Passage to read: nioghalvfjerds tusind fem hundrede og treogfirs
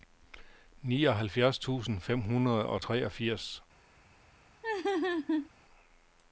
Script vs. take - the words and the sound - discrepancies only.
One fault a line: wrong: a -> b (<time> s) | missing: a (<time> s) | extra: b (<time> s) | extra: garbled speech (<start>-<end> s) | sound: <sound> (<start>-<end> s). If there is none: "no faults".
sound: laugh (4.6-5.5 s)